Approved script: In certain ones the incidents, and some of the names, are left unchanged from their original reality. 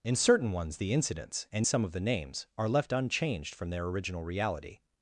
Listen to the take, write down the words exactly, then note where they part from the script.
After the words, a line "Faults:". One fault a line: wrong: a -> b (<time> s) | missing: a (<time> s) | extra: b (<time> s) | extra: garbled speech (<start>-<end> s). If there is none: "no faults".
In certain ones the incidents, and some of the names, are left unchanged from their original reality.
Faults:
no faults